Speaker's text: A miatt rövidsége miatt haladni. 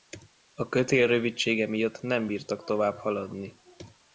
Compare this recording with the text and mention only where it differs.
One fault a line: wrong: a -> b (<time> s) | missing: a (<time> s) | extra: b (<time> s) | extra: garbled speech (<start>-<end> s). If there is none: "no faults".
wrong: miatt -> kötél (0.7 s)
extra: nem bírtak tovább (2.0 s)